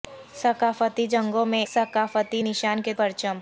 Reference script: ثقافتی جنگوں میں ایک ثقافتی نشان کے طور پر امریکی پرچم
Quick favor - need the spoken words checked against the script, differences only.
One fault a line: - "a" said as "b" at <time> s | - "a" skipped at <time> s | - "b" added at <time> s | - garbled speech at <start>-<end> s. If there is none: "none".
- "ایک" skipped at 1.6 s
- "طور پر امریکی" skipped at 2.9 s